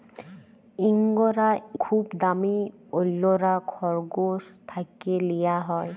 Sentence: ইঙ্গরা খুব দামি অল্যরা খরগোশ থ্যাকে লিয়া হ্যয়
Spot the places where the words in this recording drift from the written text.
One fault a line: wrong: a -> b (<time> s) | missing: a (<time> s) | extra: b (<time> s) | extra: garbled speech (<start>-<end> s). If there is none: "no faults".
no faults